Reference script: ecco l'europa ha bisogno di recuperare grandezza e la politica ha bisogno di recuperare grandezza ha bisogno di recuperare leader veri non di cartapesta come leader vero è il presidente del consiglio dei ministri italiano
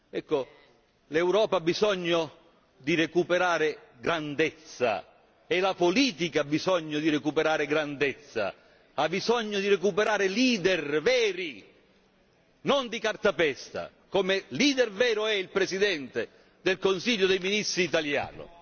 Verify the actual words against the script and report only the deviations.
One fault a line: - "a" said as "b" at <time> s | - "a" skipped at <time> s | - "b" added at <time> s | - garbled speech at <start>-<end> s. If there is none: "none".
none